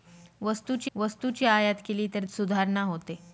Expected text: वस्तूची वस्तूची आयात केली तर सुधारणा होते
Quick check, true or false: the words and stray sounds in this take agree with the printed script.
true